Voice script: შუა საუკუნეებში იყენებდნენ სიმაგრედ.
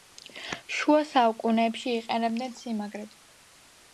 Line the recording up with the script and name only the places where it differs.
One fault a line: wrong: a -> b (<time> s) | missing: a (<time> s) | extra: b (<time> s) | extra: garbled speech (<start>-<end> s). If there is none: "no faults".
no faults